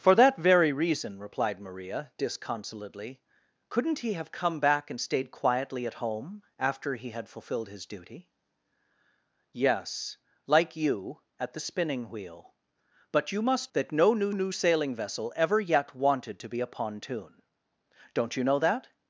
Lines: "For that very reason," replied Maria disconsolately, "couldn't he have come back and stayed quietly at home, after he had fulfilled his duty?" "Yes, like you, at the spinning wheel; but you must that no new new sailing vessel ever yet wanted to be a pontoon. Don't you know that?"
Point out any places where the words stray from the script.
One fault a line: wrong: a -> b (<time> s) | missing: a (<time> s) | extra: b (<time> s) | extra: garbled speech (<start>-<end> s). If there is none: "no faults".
no faults